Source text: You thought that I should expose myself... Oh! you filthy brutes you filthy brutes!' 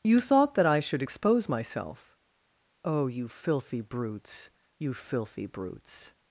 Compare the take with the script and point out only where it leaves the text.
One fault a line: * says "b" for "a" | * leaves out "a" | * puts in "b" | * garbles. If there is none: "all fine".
all fine